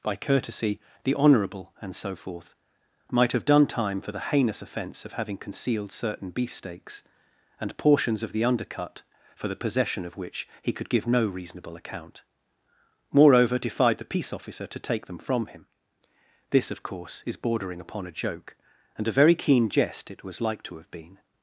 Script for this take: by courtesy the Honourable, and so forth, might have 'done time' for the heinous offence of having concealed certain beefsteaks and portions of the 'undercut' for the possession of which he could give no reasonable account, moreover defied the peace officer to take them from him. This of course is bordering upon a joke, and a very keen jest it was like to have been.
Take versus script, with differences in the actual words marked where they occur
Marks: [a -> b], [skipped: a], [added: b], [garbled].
by courtesy the Honourable, and so forth, might have 'done time' for the heinous offence of having concealed certain beefsteaks and portions of the 'undercut' for the possession of which he could give no reasonable account, moreover defied the peace officer to take them from him. This of course is bordering upon a joke, and a very keen jest it was like to have been.